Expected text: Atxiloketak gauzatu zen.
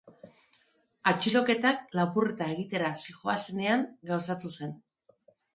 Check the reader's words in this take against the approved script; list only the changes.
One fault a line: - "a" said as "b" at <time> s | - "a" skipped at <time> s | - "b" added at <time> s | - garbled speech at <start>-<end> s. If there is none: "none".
- "lapurreta egitera zihoazenean" added at 2.0 s